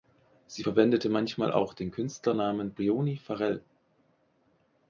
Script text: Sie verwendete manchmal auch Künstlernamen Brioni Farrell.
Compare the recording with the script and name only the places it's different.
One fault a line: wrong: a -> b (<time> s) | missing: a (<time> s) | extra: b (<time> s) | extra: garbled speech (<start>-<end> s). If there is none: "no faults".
extra: den (1.7 s)